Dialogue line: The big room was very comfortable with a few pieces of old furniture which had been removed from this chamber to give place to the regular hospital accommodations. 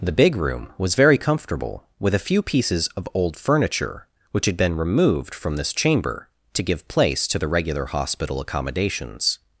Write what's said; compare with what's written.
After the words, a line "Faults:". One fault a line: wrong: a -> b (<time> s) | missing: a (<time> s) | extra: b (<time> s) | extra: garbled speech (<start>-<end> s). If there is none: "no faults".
The big room was very comfortable with a few pieces of old furniture which had been removed from this chamber to give place to the regular hospital accommodations.
Faults:
no faults